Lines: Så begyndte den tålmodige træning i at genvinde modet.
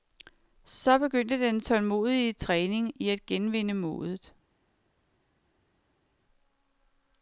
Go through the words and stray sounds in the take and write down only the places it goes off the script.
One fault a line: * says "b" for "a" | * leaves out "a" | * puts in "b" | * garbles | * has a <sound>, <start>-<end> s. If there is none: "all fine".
all fine